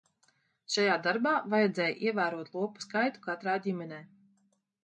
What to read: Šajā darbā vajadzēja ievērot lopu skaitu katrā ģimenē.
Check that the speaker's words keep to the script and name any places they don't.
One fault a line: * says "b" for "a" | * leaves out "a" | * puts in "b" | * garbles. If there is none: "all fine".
all fine